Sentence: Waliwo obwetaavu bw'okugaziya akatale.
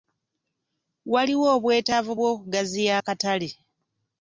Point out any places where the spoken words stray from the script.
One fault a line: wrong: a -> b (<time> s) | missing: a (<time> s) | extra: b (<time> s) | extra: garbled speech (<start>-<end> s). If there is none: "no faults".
no faults